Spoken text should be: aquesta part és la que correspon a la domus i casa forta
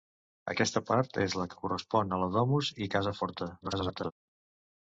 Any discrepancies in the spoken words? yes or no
yes